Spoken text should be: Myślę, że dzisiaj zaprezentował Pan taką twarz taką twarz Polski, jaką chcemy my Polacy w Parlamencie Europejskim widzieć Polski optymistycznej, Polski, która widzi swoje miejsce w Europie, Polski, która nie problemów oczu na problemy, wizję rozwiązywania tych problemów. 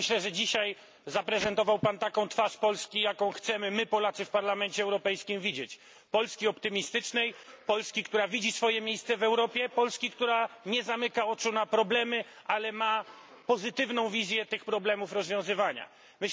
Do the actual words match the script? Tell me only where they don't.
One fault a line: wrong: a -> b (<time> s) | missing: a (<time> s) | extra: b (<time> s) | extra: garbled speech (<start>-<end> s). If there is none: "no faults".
missing: taką twarz (2.6 s)
wrong: problemów -> zamyka (10.8 s)
extra: ale ma pozytywną (12.4 s)